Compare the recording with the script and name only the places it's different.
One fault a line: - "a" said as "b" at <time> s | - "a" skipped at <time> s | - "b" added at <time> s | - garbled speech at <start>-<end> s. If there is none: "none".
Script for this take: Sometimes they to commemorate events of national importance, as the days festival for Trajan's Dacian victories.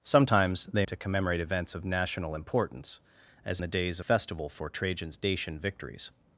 none